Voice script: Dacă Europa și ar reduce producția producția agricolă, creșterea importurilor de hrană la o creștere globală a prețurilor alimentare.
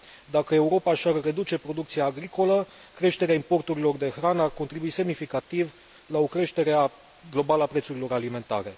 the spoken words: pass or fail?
fail